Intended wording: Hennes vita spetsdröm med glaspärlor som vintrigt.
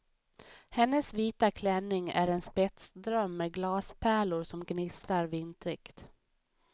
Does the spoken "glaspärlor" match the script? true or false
true